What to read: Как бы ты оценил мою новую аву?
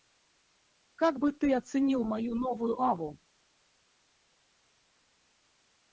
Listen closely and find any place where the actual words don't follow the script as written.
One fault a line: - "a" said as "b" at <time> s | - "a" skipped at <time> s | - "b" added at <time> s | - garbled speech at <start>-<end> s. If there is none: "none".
none